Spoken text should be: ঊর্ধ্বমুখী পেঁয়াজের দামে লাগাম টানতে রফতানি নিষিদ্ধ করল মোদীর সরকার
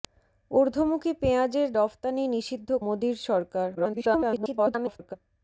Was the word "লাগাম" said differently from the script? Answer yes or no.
yes